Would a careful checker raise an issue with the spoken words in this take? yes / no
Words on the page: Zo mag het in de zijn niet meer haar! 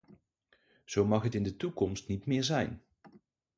yes